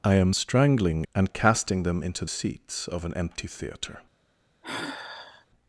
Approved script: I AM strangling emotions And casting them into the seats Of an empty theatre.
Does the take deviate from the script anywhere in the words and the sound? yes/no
yes